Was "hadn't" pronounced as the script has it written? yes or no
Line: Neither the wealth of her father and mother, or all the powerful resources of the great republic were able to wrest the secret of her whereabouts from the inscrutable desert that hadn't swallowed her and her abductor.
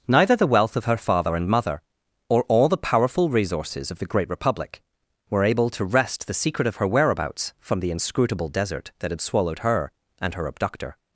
no